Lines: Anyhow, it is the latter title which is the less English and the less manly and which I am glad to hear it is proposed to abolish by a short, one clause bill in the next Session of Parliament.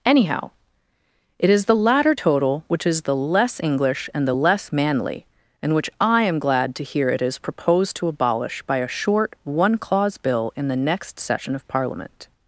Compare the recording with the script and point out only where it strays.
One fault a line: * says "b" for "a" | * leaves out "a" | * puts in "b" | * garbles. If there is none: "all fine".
* says "total" for "title"